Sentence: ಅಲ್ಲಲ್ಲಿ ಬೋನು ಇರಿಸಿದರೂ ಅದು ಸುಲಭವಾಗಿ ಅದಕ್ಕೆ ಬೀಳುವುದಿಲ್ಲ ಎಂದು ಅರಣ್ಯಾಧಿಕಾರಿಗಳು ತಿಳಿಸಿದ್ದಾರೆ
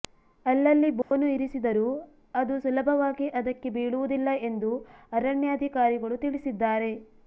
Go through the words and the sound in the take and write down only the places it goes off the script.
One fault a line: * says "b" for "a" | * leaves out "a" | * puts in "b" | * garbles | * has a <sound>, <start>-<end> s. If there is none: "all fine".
* has a dropout, 1.0-1.1 s